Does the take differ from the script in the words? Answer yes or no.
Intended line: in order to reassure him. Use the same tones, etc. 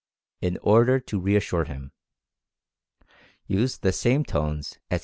no